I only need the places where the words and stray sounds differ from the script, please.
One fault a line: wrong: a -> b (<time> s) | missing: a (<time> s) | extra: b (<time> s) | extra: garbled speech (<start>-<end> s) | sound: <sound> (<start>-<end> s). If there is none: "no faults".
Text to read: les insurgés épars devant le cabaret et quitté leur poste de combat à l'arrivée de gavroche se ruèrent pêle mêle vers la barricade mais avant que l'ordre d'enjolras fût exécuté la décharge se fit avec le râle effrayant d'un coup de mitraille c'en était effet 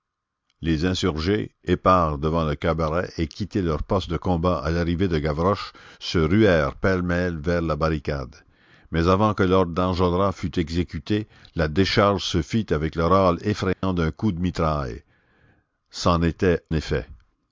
sound: dropout (13.7-13.8 s)